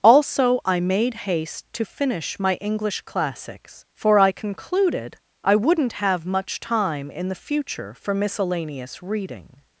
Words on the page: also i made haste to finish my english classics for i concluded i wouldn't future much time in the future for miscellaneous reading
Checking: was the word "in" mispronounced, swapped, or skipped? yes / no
no